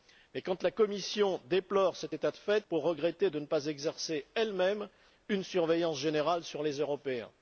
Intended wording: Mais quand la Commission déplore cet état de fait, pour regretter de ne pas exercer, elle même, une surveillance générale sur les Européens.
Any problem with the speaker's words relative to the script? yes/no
no